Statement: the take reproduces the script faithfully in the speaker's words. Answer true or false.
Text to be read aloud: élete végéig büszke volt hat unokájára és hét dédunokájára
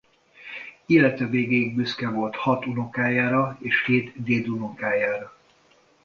true